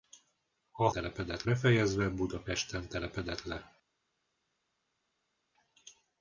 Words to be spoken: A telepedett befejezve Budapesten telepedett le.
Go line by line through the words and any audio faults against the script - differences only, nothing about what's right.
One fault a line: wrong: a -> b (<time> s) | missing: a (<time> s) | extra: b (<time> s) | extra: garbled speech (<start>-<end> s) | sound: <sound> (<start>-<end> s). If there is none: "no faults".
no faults